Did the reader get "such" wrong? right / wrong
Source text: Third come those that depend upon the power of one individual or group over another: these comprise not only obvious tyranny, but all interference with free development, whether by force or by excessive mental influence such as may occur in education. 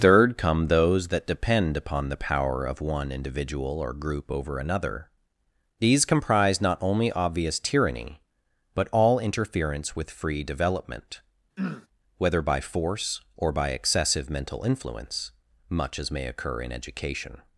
wrong